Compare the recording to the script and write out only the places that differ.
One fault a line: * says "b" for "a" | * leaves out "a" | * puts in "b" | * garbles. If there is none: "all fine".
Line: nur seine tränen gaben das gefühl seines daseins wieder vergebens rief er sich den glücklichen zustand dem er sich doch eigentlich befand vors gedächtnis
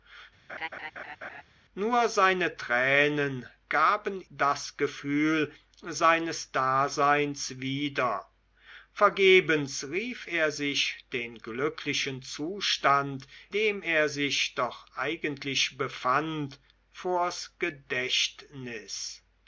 all fine